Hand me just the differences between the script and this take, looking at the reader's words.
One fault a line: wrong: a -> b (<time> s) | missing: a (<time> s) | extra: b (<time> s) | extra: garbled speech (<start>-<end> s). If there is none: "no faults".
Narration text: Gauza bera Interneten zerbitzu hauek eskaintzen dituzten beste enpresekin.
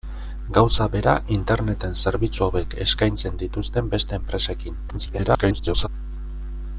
extra: garbled speech (4.9-5.9 s)